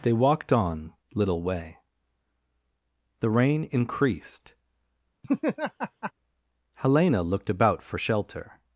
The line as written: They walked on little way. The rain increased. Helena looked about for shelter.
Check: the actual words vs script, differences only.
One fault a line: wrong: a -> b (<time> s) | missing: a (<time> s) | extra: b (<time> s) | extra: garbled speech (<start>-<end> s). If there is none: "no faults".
no faults